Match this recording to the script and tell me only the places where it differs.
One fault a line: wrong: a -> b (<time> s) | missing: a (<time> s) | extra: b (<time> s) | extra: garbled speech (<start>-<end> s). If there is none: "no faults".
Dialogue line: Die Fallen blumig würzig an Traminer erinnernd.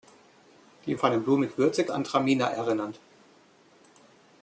no faults